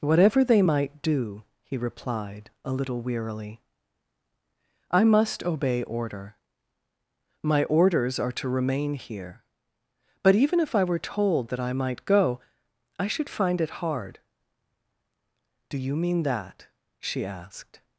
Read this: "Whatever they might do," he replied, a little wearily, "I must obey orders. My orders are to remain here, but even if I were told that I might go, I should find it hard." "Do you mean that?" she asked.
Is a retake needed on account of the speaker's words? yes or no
yes